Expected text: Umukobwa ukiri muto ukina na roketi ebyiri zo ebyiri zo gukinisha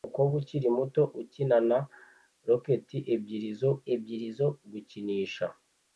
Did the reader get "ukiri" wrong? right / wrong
right